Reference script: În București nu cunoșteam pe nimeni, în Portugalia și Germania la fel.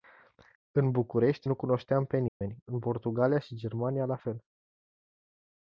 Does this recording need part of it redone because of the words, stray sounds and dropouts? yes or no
yes